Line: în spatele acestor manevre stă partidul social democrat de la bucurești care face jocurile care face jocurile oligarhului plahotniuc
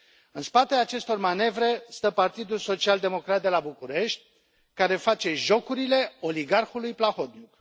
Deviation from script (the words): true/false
true